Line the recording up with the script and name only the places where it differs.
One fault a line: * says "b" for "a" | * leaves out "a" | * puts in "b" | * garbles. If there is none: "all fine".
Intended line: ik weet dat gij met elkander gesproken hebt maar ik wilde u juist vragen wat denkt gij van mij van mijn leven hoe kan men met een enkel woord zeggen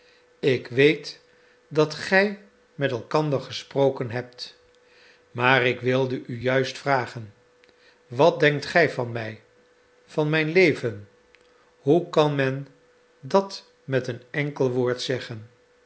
* puts in "dat"